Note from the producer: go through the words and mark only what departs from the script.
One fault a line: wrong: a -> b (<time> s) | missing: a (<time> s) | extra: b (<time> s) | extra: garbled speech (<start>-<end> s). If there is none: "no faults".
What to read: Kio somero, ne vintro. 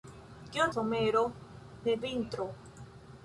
no faults